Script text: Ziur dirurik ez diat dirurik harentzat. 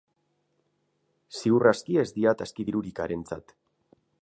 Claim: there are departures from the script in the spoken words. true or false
true